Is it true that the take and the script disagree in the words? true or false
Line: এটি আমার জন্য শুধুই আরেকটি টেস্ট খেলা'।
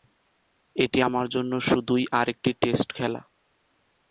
false